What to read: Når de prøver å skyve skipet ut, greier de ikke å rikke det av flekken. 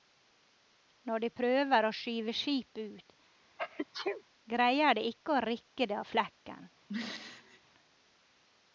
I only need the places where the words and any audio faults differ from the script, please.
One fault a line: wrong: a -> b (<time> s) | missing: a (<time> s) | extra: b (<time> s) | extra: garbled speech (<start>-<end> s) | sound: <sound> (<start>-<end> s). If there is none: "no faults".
sound: sneeze (3.6-4.2 s)
sound: throat clearing (6.9-7.6 s)